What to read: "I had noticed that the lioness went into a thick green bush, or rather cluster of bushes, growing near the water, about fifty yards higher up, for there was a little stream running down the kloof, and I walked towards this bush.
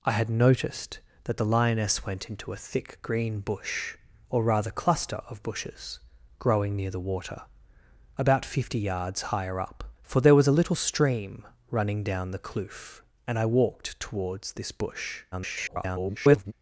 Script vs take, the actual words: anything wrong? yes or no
yes